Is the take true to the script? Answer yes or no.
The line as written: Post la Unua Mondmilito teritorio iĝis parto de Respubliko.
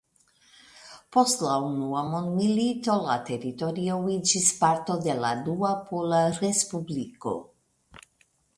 no